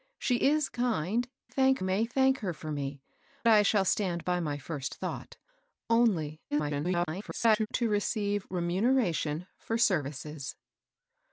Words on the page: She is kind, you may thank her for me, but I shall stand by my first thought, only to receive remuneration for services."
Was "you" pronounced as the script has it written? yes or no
no